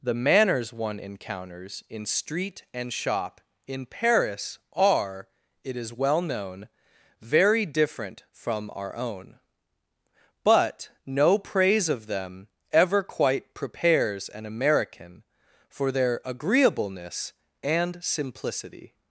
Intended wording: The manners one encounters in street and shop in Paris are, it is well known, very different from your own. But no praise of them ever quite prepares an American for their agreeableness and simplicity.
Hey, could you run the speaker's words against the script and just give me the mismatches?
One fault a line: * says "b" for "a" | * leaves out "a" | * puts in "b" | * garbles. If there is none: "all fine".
* says "our" for "your"